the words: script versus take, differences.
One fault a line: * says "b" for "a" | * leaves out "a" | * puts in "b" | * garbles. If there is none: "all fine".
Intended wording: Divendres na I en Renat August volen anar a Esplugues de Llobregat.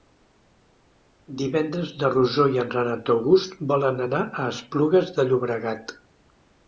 * puts in "Rosó"